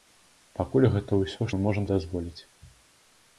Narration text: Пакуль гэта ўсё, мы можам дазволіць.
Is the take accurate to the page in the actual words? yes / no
yes